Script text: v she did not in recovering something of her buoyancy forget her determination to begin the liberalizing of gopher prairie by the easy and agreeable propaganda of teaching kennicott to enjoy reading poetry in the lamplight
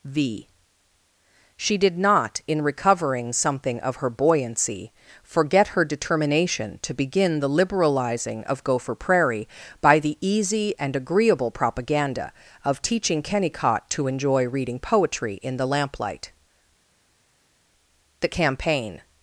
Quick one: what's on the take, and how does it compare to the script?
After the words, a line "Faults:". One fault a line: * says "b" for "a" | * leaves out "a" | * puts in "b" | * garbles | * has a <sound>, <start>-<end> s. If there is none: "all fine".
v she did not in recovering something of her buoyancy forget her determination to begin the liberalizing of gopher prairie by the easy and agreeable propaganda of teaching kennicott to enjoy reading poetry in the lamplight the campaign
Faults:
* puts in "the campaign"